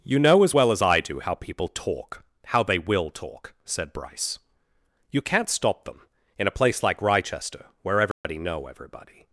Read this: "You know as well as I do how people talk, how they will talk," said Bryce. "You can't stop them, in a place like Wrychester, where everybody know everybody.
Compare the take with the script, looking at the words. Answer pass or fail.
pass